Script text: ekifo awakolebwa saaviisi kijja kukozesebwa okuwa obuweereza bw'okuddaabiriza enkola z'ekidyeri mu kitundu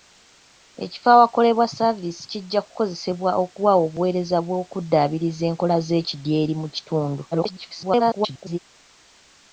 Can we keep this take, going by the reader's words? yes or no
no